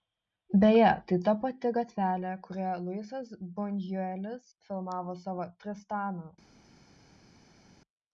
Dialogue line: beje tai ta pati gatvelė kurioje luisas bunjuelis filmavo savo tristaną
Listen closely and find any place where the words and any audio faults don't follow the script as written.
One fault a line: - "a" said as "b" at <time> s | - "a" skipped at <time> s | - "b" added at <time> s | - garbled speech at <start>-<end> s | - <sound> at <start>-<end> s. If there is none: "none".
none